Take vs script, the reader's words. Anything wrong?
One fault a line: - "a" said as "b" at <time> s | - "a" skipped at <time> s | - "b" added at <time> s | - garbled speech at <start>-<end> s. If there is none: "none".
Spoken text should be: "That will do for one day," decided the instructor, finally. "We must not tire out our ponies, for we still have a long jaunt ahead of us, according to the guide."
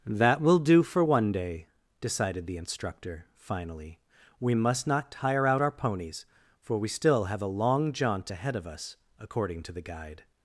none